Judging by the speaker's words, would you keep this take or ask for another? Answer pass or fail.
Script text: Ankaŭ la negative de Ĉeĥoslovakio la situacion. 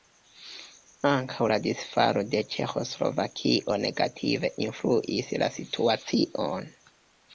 fail